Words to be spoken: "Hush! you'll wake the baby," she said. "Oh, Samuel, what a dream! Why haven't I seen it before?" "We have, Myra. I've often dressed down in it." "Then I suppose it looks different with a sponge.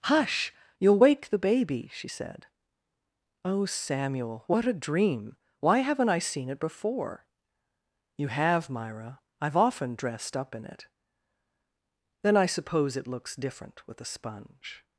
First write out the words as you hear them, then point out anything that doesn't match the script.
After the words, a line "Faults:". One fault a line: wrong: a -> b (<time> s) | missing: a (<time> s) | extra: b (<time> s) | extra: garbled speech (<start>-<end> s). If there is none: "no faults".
"Hush! you'll wake the baby," she said. "Oh, Samuel, what a dream! Why haven't I seen it before?" "You have, Myra. I've often dressed up in it." "Then I suppose it looks different with a sponge.
Faults:
wrong: We -> You (8.2 s)
wrong: down -> up (10.4 s)